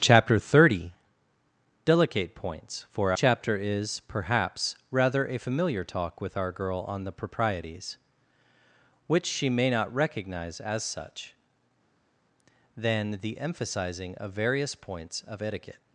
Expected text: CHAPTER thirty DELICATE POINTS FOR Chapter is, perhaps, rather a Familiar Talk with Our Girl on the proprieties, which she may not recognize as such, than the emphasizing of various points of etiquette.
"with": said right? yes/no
yes